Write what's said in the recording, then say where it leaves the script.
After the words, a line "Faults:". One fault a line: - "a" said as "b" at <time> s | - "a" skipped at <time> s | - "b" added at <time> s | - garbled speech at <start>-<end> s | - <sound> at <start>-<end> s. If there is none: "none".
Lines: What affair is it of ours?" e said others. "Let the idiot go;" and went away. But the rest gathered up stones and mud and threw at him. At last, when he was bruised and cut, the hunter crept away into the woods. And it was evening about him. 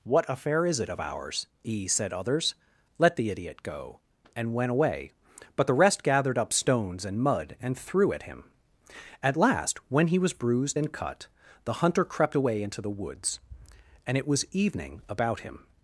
What affair is it of ours?" e said others. "Let the idiot go;" and went away. But the rest gathered up stones and mud and threw at him. At last, when he was bruised and cut, the hunter crept away into the woods. And it was evening about him.
Faults:
none